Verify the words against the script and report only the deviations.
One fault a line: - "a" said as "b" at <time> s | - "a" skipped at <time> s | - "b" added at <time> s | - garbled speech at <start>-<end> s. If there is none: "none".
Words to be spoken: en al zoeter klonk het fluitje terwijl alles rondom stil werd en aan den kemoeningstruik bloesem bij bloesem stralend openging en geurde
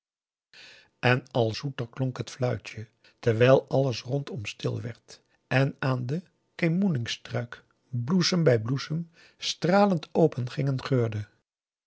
none